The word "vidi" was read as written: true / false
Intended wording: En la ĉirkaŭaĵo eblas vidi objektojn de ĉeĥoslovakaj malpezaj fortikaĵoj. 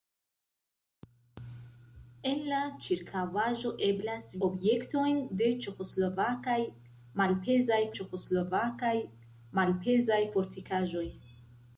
false